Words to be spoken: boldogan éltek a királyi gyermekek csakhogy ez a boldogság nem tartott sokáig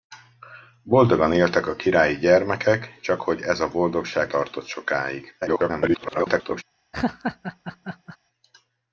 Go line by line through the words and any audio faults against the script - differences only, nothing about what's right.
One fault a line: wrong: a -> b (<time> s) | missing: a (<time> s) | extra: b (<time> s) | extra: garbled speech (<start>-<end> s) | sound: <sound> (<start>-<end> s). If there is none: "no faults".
missing: nem (4.3 s)
extra: garbled speech (5.4-6.6 s)
sound: laugh (6.9-8.2 s)